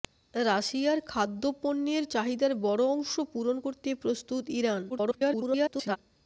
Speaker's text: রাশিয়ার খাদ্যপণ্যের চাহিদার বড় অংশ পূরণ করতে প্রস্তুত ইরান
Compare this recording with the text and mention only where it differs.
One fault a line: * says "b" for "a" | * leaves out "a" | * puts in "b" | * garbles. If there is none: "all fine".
* garbles